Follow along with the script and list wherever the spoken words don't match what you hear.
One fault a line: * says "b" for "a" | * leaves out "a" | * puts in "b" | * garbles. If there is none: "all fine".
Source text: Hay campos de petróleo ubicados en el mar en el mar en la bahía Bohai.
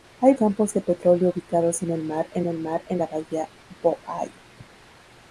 all fine